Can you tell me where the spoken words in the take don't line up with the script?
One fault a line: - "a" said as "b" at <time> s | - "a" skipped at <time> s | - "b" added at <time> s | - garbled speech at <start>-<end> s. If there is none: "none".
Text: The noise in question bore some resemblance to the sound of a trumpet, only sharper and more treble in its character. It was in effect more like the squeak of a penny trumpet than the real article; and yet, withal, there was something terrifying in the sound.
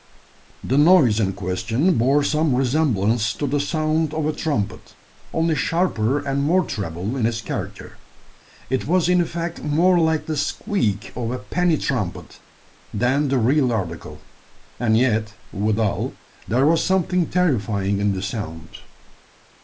none